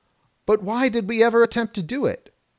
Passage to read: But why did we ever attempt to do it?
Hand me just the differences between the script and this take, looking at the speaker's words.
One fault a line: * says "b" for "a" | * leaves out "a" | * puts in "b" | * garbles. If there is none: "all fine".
all fine